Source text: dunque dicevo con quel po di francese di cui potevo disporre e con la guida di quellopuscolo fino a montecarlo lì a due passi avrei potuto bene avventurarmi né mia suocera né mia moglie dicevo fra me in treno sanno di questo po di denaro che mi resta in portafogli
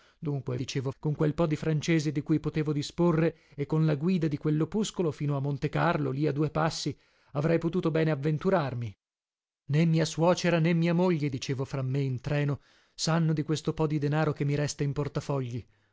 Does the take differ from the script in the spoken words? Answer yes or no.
no